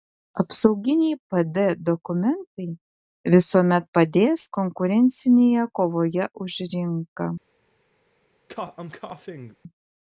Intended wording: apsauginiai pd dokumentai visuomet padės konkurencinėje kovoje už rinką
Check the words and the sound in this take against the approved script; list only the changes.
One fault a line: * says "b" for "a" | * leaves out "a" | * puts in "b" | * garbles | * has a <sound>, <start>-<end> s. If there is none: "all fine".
* has a cough, 8.5-9.6 s